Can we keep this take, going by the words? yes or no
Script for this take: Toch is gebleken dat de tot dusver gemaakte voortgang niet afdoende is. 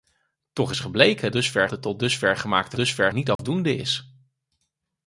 no